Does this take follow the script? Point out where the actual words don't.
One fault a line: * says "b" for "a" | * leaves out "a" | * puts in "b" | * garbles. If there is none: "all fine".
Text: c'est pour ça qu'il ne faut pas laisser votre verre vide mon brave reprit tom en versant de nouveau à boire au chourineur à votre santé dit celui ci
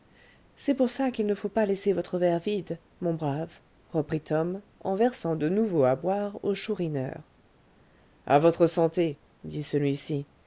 all fine